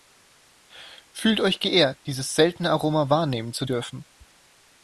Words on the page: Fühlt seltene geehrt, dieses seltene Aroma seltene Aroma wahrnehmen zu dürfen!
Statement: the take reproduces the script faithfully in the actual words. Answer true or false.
false